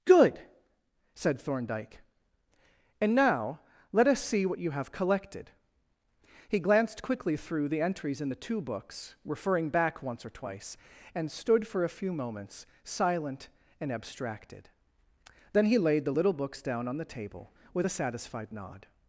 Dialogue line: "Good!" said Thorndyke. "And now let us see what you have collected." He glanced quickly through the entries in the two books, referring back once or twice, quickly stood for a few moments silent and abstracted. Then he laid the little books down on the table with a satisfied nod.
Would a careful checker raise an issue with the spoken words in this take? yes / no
yes